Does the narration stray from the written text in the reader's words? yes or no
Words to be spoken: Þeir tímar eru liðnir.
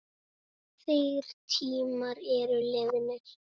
no